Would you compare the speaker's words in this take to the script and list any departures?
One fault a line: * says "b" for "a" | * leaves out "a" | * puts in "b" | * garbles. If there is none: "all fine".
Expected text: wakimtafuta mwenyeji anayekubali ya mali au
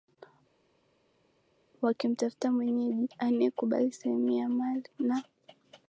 * puts in "sehemu"
* says "na" for "au"